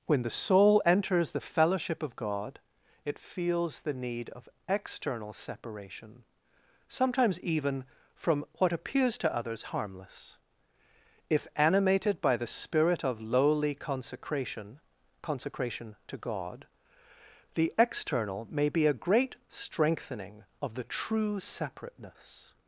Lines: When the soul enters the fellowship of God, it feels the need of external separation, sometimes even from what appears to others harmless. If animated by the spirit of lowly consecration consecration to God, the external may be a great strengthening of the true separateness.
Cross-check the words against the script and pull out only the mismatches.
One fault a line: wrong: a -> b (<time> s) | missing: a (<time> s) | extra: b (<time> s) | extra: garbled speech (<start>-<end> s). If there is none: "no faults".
no faults